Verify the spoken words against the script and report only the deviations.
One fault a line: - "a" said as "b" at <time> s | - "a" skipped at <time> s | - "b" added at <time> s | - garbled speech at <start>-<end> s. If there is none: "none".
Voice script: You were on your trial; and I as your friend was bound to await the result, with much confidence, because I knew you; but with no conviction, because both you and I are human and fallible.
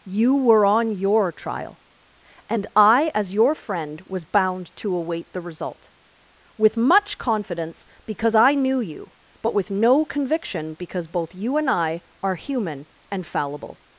none